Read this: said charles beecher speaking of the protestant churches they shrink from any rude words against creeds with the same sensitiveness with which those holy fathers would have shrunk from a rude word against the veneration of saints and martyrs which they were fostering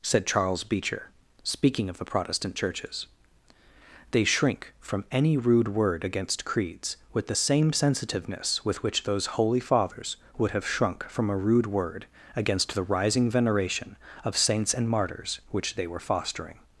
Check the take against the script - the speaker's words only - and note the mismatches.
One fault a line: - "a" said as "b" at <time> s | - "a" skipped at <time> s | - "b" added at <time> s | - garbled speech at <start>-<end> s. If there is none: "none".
- "words" said as "word" at 5.7 s
- "rising" added at 12.8 s